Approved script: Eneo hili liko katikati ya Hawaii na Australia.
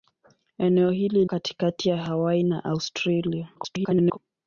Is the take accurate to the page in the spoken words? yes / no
no